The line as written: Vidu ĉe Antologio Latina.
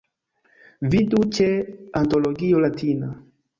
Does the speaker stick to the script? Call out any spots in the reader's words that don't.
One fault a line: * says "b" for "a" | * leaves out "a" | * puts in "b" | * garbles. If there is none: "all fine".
all fine